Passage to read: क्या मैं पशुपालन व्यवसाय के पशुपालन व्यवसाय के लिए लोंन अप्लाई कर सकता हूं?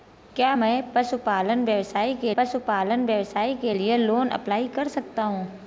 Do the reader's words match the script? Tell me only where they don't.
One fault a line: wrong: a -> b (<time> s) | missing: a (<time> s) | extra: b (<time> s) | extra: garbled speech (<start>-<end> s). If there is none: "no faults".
no faults